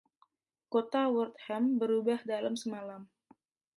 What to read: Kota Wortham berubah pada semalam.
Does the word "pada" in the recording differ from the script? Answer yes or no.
yes